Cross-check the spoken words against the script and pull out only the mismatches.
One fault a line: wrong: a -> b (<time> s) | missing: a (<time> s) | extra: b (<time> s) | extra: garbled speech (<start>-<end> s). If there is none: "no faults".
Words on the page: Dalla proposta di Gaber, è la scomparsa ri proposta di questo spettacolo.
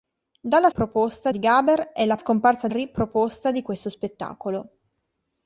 no faults